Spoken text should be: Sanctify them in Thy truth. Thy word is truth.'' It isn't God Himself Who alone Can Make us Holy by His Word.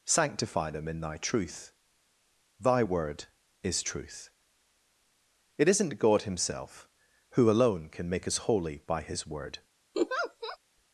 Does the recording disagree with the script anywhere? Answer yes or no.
no